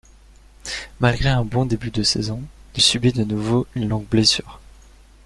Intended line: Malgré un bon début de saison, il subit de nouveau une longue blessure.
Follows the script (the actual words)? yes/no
yes